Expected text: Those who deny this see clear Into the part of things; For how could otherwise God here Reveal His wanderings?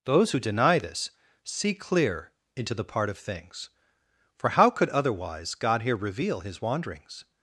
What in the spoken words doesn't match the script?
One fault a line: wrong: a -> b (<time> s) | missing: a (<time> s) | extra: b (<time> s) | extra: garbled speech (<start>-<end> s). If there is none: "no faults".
no faults